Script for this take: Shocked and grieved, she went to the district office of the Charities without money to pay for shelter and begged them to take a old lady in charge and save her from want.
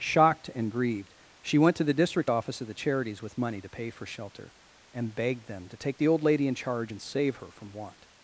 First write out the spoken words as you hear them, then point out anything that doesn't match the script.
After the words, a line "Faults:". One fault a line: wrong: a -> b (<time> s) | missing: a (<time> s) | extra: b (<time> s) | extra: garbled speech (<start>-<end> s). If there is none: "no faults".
Shocked and grieved, she went to the district office of the Charities with money to pay for shelter and begged them to take the old lady in charge and save her from want.
Faults:
wrong: without -> with (3.2 s)
wrong: a -> the (6.0 s)